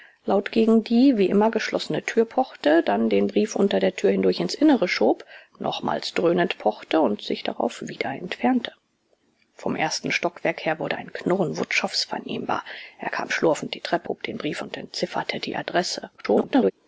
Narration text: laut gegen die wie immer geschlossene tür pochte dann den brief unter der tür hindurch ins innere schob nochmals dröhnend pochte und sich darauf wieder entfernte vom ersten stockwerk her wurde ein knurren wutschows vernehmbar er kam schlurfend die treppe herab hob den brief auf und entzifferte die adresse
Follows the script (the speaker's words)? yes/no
no